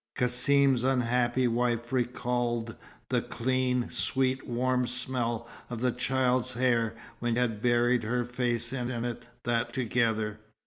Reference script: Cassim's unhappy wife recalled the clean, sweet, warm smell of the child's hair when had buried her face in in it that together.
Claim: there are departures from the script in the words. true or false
false